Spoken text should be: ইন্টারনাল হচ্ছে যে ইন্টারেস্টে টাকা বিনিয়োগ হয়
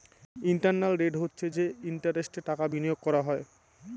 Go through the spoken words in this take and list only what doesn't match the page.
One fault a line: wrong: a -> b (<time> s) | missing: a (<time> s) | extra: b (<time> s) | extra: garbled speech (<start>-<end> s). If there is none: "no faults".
extra: রেট (1.0 s)
extra: করা (3.1 s)